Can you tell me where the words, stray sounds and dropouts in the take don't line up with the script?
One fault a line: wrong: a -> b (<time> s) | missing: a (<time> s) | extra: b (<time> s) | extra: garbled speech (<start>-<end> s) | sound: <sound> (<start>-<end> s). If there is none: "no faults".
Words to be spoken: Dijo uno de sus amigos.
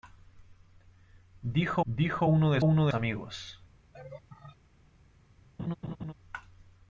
extra: dijo (1.9 s)
wrong: sus -> uno (2.6 s)
sound: laugh (3.9-4.6 s)
sound: laugh (5.6-6.1 s)